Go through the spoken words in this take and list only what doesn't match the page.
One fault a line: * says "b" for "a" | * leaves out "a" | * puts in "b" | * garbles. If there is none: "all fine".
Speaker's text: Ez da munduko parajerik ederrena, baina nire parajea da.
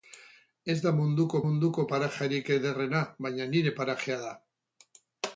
* puts in "munduko"